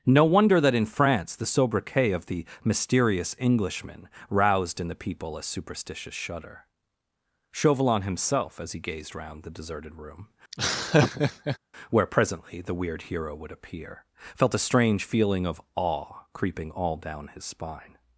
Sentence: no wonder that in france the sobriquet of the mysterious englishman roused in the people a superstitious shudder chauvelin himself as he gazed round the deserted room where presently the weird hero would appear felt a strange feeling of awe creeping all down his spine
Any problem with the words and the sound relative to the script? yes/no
yes